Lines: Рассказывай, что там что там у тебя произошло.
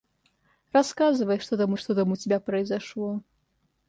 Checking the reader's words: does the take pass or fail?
pass